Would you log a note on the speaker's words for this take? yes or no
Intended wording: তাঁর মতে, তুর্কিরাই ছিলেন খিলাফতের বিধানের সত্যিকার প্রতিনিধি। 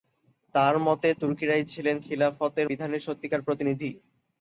no